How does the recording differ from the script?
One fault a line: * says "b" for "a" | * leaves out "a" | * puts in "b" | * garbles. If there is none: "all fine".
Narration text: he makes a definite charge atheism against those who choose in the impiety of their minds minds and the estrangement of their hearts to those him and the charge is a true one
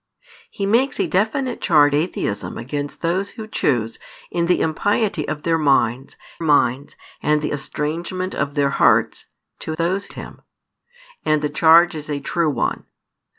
all fine